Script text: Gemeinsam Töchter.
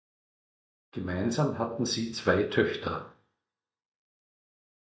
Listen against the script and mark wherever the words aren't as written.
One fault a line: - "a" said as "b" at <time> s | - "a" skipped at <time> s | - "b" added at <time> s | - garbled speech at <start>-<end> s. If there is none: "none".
- "hatten sie zwei" added at 1.6 s